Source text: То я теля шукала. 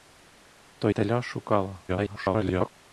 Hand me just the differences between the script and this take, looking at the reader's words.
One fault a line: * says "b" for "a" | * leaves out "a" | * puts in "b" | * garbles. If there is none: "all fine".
* leaves out "я"
* garbles